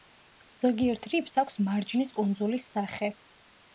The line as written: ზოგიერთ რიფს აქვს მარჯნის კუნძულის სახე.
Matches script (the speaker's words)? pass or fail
pass